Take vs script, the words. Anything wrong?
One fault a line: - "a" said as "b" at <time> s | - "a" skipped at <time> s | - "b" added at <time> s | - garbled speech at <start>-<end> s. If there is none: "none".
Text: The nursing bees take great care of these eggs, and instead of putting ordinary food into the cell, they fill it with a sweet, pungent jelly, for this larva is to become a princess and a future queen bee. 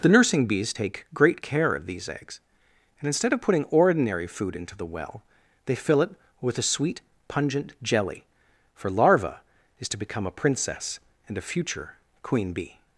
- "cell" said as "well" at 4.8 s
- "this" skipped at 8.9 s